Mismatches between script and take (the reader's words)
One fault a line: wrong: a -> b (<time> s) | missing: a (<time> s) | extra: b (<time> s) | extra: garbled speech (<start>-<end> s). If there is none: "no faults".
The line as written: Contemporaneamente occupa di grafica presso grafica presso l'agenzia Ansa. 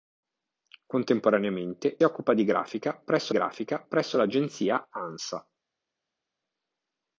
no faults